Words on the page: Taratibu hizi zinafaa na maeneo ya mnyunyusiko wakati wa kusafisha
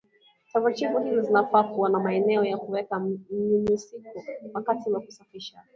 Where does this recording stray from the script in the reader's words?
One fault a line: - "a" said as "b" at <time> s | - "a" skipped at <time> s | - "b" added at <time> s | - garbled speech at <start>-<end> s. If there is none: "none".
- "kuwa" added at 1.6 s
- "kuweka" added at 2.5 s